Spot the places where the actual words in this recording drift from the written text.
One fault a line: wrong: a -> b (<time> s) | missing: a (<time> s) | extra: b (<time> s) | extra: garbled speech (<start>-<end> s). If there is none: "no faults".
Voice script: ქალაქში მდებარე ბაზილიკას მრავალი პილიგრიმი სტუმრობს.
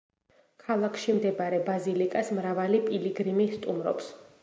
no faults